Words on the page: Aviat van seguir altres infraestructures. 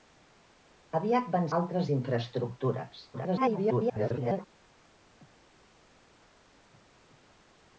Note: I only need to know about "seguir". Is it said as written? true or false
false